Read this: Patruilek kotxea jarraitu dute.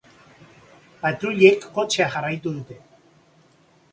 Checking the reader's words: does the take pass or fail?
pass